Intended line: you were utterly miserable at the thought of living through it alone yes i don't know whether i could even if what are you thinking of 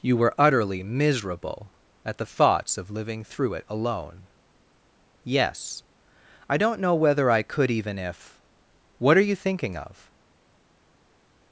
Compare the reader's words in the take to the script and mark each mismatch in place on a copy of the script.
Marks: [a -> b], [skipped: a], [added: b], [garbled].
you were utterly miserable at the [thought -> thoughts] of living through it alone yes i don't know whether i could even if what are you thinking of